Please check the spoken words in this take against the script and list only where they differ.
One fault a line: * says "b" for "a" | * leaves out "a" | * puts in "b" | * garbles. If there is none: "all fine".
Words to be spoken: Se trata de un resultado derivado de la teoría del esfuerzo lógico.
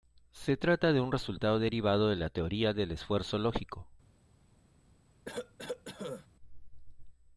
all fine